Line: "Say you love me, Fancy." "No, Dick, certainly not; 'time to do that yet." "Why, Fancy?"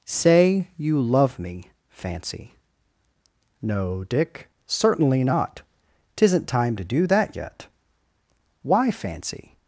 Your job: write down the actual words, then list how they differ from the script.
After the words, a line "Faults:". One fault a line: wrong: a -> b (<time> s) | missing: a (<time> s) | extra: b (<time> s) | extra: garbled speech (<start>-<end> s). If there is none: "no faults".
"Say you love me, Fancy." "No, Dick, certainly not; 'tisn't time to do that yet." "Why, Fancy?"
Faults:
extra: tisn't (6.1 s)